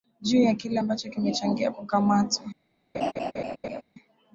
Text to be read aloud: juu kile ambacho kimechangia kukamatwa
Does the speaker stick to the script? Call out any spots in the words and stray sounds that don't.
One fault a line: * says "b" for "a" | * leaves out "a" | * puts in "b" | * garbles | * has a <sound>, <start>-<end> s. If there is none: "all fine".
* puts in "ya"
* has a laugh, 2.9-3.8 s